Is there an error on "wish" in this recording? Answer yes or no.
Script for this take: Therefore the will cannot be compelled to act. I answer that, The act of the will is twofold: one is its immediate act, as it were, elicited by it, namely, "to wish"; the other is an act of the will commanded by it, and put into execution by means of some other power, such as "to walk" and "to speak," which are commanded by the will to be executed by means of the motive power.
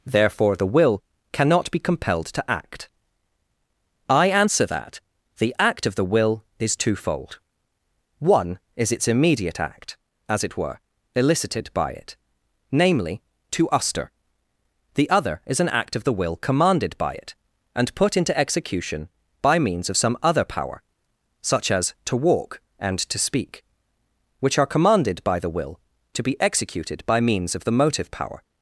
yes